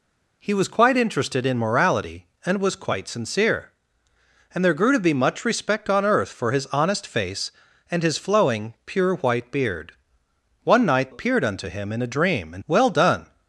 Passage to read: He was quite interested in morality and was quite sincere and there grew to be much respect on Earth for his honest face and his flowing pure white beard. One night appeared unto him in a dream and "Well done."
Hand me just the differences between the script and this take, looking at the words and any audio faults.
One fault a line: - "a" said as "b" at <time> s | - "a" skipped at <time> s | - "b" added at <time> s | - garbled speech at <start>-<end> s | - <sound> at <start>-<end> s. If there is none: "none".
none